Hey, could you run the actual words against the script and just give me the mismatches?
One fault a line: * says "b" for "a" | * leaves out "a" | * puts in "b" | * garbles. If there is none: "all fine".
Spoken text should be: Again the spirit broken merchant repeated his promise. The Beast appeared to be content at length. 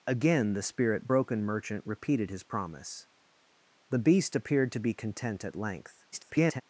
* garbles